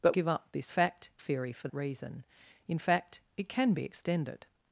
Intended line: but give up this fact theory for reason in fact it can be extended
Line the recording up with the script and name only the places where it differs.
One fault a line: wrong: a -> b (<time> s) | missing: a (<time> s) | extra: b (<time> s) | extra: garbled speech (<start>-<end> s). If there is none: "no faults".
no faults